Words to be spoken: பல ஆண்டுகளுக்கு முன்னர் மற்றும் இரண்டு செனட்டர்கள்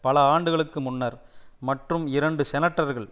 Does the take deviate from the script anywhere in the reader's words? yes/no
no